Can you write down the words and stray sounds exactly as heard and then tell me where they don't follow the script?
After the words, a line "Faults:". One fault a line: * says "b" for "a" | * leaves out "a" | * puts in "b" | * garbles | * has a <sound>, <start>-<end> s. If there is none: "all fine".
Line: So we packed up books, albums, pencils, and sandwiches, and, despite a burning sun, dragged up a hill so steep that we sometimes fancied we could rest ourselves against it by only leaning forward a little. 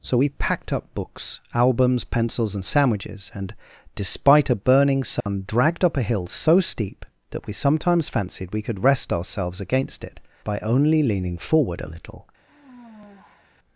So we packed up books, albums, pencils, and sandwiches, and, despite a burning sun, dragged up a hill so steep that we sometimes fancied we could rest ourselves against it by only leaning forward a little.
Faults:
* has a dropout, 5.2-5.3 s
* has a sigh, 12.5-13.5 s